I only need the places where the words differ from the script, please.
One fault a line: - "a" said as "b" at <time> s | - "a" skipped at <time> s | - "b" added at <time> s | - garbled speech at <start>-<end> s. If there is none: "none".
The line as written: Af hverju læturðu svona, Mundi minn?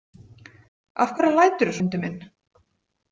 - "svona" skipped at 1.8 s